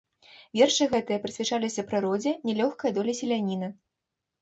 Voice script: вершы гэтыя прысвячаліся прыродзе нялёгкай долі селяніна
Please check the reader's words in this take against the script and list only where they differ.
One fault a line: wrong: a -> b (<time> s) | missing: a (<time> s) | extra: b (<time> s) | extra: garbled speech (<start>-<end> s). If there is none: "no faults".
no faults